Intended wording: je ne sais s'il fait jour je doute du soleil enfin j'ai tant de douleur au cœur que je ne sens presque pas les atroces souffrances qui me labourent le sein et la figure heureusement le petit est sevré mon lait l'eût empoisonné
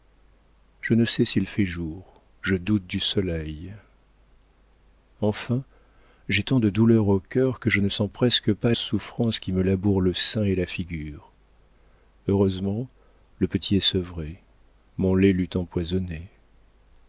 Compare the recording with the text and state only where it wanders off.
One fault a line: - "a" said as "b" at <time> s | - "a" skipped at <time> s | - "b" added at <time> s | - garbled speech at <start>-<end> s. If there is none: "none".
- "les atroces" skipped at 8.7 s